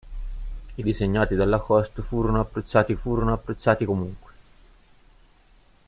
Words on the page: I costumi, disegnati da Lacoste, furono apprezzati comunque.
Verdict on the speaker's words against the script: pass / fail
fail